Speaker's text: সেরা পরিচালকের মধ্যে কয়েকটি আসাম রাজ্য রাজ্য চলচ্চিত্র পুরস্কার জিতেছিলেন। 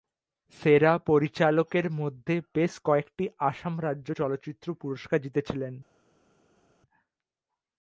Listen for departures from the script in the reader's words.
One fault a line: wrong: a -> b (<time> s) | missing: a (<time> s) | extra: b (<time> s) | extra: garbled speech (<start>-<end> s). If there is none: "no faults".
extra: বেশ (2.5 s)
missing: রাজ্য (4.1 s)